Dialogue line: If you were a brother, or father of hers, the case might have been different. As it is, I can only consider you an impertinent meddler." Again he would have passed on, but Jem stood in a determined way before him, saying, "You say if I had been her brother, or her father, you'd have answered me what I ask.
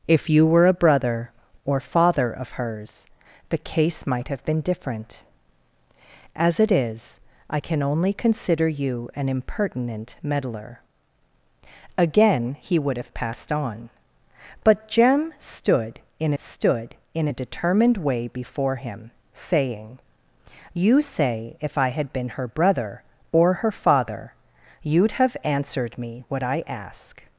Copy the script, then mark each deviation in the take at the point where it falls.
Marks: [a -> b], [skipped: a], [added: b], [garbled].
If you were a brother, or father of hers, the case might have been different. As it is, I can only consider you an impertinent meddler." Again he would have passed on, but Jem stood in [added: stood in] a determined way before him, saying, "You say if I had been her brother, or her father, you'd have answered me what I ask.